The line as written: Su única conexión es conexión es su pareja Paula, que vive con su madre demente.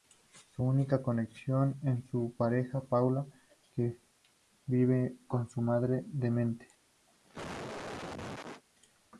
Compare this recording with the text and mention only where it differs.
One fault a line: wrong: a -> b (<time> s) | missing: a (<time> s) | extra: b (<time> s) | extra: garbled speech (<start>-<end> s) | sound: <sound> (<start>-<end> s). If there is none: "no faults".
missing: conexión es (2.0 s)
sound: cough (7.1-8.6 s)